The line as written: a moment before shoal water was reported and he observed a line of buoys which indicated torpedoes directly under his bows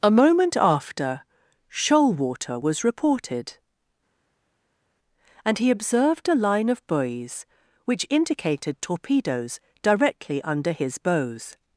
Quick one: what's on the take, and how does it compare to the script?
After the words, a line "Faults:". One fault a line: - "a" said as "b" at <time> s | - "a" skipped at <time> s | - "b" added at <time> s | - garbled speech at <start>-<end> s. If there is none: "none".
a moment after shoal water was reported and he observed a line of buoys which indicated torpedoes directly under his bows
Faults:
- "before" said as "after" at 0.6 s